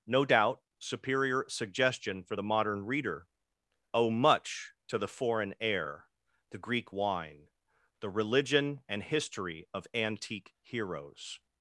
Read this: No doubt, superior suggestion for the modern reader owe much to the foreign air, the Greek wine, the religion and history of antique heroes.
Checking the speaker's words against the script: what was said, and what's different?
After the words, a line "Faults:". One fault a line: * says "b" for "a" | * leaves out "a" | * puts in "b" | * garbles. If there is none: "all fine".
No doubt, superior suggestion for the modern reader owe much to the foreign air, the Greek wine, the religion and history of antique heroes.
Faults:
all fine